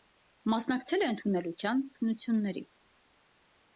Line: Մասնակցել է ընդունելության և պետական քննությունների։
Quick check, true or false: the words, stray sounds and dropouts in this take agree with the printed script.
false